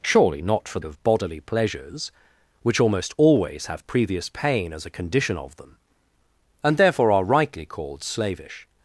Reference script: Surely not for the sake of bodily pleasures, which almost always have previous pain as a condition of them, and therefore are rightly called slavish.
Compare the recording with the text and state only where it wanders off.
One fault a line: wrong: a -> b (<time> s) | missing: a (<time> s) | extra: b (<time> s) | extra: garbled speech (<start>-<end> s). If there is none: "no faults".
missing: the sake (0.8 s)